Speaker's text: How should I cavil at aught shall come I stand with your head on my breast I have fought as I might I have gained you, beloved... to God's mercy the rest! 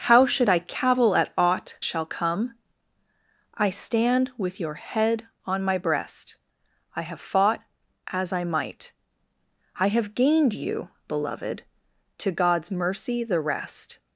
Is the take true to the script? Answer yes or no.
yes